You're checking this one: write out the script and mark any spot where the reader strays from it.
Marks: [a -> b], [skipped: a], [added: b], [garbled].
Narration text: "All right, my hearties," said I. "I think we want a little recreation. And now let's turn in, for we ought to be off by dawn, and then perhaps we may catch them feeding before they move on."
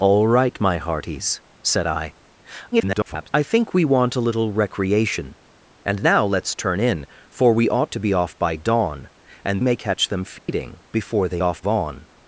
"All right, my hearties," said I. [garbled] "I think we want a little recreation. And now let's turn in, for we ought to be off by dawn, and [skipped: then perhaps we] may catch them feeding before they [move -> off] on."